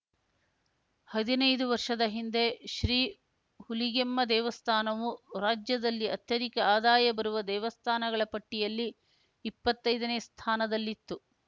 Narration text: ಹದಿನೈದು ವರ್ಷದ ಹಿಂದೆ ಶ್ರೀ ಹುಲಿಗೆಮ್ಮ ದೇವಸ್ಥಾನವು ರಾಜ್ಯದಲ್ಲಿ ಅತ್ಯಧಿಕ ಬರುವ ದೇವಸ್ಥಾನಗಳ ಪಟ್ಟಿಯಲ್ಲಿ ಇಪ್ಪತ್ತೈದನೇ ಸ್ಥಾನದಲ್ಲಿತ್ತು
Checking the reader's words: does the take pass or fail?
fail